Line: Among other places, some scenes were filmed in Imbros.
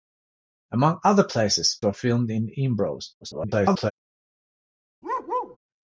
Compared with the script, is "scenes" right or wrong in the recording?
wrong